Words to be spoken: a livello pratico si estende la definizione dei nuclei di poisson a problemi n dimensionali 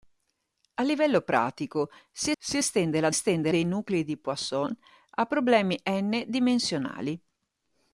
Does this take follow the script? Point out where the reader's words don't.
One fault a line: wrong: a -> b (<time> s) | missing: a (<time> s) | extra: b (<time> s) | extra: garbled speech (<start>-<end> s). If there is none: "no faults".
extra: si (2.4 s)
wrong: definizione -> estende (3.1 s)